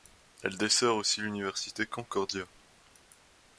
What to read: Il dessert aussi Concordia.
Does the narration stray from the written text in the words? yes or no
yes